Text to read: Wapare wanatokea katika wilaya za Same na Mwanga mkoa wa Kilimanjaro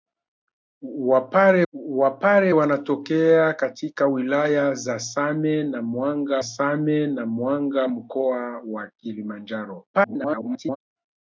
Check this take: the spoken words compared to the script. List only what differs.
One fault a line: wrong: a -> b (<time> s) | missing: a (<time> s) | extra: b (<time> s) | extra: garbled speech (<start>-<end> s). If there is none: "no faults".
extra: wapare (1.7 s)
extra: Same na Mwanga (6.4 s)
extra: garbled speech (9.9-10.8 s)